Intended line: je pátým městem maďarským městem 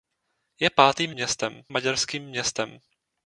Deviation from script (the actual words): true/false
false